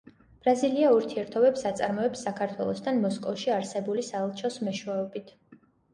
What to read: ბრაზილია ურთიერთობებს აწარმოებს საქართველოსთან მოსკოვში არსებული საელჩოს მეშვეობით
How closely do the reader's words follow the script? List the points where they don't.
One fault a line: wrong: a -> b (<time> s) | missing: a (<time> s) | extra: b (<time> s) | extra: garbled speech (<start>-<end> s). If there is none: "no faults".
no faults